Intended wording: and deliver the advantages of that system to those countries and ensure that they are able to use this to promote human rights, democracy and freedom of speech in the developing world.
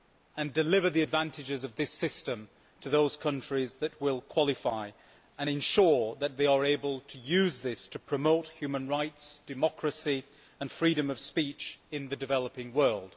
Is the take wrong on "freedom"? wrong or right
right